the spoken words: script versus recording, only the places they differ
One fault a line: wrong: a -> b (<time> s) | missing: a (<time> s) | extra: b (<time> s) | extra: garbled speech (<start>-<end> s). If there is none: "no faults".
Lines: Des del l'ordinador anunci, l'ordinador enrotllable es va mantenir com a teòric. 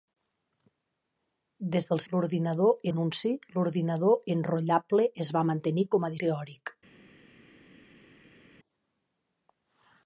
no faults